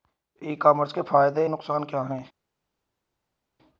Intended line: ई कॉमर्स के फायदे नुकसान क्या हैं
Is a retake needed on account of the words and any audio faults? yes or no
no